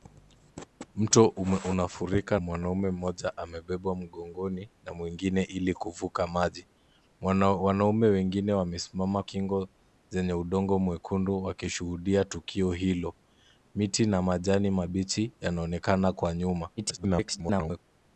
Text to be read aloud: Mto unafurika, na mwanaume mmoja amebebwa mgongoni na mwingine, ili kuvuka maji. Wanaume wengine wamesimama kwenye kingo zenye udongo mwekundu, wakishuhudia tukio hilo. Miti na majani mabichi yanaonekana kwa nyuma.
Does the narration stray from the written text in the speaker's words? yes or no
yes